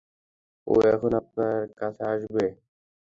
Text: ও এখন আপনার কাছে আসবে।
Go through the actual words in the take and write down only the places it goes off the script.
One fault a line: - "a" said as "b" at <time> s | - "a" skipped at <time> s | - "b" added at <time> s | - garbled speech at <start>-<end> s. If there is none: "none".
none